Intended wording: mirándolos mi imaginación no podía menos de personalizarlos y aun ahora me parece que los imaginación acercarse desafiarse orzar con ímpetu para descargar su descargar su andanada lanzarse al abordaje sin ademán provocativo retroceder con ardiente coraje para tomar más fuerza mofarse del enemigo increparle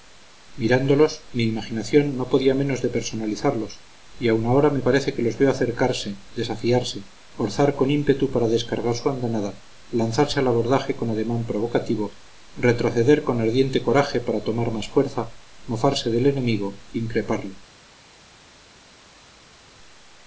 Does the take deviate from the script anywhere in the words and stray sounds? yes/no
yes